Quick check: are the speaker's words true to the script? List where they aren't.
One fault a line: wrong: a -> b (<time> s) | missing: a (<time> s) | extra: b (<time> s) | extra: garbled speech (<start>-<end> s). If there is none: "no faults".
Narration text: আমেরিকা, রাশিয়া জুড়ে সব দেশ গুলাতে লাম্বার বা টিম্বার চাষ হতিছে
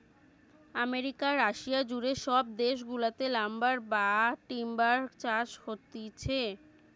no faults